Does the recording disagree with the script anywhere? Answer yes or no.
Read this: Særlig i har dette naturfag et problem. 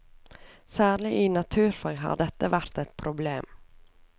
yes